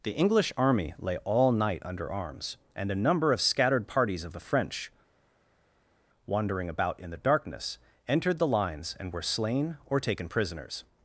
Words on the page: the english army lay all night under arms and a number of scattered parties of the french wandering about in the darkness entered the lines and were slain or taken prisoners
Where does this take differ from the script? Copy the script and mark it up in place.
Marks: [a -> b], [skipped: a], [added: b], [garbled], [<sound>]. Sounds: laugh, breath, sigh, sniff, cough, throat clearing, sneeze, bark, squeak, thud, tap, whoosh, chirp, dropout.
the english army lay all night under arms and a number of scattered parties of the french wandering about in the darkness entered the lines and were slain or taken prisoners